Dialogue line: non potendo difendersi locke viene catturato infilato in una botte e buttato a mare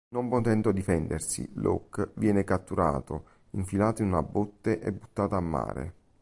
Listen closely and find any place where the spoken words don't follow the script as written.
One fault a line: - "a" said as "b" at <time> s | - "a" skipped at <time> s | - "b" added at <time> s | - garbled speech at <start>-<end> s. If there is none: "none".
none